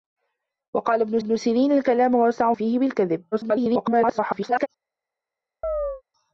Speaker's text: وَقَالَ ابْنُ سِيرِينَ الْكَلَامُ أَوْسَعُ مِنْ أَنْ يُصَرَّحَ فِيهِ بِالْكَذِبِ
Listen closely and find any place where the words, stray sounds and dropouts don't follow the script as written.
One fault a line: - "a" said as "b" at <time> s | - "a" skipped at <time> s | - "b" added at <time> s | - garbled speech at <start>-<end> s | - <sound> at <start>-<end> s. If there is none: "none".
- "ابْنُ" added at 1.2 s
- "مِنْ أَنْ يُصَرَّحَ" skipped at 2.5 s
- garbled speech at 3.3-4.7 s
- chirp at 5.6-6.0 s